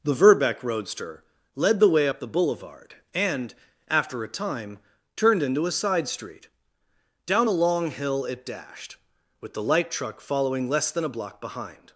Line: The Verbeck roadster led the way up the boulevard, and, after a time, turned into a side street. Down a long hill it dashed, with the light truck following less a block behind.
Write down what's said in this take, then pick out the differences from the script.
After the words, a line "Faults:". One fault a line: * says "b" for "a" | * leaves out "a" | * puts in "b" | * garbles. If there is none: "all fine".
The Verbeck roadster led the way up the boulevard, and, after a time, turned into a side street. Down a long hill it dashed, with the light truck following less than a block behind.
Faults:
* puts in "than"